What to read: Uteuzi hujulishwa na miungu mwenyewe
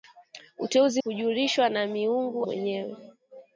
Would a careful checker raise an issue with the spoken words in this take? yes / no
no